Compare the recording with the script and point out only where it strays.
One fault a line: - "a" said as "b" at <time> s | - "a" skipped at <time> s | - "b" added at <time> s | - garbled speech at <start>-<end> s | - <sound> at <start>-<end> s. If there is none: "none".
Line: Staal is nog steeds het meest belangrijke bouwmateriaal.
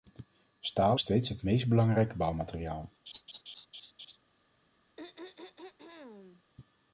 - "is nog" skipped at 1.0 s
- laugh at 3.1-4.2 s
- throat clearing at 5.0-6.4 s